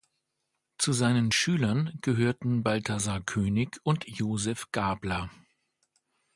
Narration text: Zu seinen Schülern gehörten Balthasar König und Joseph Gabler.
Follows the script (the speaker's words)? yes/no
yes